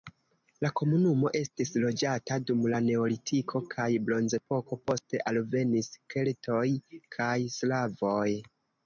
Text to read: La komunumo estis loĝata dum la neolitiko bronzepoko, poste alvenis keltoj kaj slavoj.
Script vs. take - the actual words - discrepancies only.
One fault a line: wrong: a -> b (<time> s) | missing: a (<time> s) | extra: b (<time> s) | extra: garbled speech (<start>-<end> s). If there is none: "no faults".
extra: kaj (3.7 s)